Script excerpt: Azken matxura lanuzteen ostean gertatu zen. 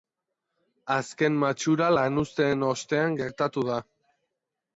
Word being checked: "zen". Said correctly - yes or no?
no